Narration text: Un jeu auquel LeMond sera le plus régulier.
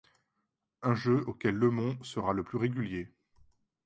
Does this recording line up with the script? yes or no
yes